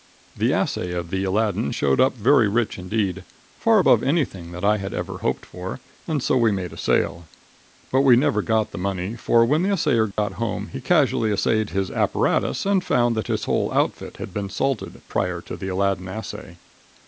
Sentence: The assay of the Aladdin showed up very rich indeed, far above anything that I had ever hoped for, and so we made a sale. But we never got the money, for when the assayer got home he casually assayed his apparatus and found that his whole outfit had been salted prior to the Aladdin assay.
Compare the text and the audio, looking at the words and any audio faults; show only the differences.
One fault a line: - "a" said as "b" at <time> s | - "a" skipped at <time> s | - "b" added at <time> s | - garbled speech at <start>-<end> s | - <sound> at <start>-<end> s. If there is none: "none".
- dropout at 10.1-10.2 s